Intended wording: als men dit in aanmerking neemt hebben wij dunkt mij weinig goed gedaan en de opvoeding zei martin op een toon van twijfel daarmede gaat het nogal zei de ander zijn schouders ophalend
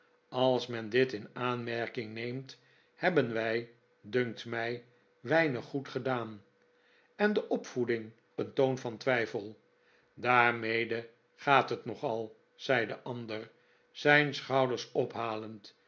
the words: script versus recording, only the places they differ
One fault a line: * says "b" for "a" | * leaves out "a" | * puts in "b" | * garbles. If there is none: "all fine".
* leaves out "zei martin op"